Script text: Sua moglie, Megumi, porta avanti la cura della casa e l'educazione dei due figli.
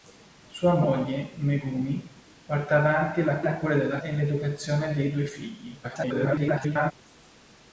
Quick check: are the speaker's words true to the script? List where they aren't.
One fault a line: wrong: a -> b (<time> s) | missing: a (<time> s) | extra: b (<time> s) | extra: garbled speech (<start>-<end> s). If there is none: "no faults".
extra: la (3.4 s)
missing: casa (4.0 s)
extra: garbled speech (5.8-6.9 s)